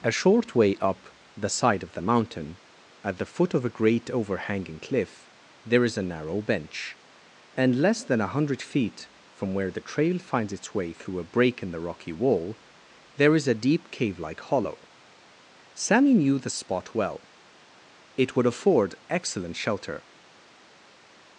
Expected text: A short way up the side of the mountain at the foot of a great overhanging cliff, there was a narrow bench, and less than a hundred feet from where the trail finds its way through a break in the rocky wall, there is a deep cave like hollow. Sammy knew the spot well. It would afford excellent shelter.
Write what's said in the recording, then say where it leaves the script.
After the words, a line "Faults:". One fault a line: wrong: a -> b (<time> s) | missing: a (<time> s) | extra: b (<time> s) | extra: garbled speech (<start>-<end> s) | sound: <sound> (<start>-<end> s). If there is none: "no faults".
A short way up the side of the mountain at the foot of a great overhanging cliff, there is a narrow bench, and less than a hundred feet from where the trail finds its way through a break in the rocky wall, there is a deep cave like hollow. Sammy knew the spot well. It would afford excellent shelter.
Faults:
wrong: was -> is (5.8 s)